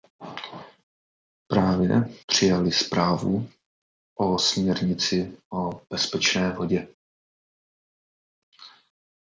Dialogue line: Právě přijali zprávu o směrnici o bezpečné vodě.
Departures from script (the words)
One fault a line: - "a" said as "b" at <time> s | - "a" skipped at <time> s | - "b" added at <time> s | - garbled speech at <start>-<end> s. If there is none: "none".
none